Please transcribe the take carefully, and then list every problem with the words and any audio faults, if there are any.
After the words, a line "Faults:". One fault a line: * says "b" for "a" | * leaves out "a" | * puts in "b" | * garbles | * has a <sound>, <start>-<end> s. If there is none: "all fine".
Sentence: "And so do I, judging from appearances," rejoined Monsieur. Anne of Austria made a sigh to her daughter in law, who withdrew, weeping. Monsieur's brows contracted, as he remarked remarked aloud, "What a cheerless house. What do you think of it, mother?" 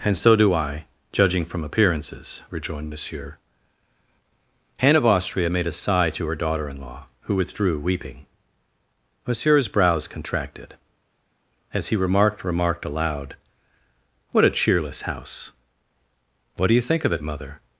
"And so do I, judging from appearances," rejoined Monsieur. Anne of Austria made a sigh to her daughter in law, who withdrew, weeping. Monsieur's brows contracted, as he remarked remarked aloud, "What a cheerless house. What do you think of it, mother?"
Faults:
all fine